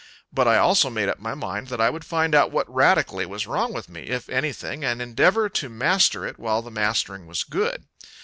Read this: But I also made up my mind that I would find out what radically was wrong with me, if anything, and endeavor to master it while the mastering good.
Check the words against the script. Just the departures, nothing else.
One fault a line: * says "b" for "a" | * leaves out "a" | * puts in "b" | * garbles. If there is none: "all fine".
* puts in "was"